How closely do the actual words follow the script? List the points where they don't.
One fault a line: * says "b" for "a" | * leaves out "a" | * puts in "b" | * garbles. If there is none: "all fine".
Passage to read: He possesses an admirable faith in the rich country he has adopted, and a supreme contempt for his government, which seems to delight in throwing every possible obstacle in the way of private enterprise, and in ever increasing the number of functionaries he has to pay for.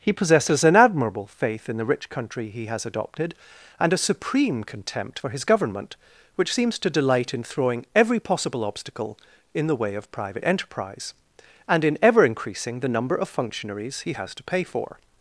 all fine